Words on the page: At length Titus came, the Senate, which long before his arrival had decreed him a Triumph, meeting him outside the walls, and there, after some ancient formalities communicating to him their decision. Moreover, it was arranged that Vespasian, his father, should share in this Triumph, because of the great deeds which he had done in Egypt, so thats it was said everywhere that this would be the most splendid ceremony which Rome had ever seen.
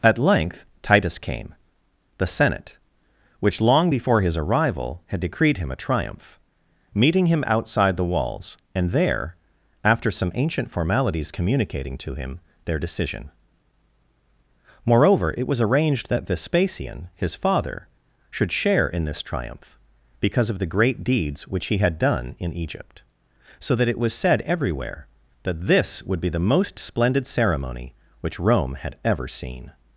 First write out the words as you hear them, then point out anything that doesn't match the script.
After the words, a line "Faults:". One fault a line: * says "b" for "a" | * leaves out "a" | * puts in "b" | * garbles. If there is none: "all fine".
At length Titus came, the Senate, which long before his arrival had decreed him a Triumph, meeting him outside the walls, and there, after some ancient formalities communicating to him their decision. Moreover, it was arranged that Vespasian, his father, should share in this Triumph, because of the great deeds which he had done in Egypt, so that it was said everywhere that this would be the most splendid ceremony which Rome had ever seen.
Faults:
* says "that" for "thats"